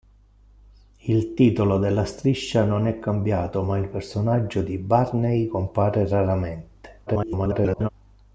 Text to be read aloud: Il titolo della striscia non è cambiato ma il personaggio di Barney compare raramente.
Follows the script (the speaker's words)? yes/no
no